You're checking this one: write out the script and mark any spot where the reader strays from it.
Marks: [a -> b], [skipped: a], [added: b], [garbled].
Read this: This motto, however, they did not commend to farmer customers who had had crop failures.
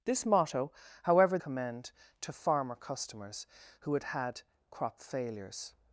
This motto, however, [skipped: they did not] commend to farmer customers who had had crop failures.